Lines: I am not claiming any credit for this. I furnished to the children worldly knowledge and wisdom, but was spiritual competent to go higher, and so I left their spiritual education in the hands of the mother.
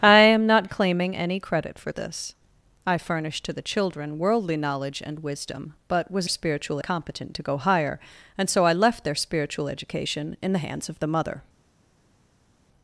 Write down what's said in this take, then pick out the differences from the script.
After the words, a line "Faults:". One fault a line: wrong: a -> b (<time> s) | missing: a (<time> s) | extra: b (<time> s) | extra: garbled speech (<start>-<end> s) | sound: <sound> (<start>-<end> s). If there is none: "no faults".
I am not claiming any credit for this. I furnished to the children worldly knowledge and wisdom, but was spiritual competent to go higher, and so I left their spiritual education in the hands of the mother.
Faults:
no faults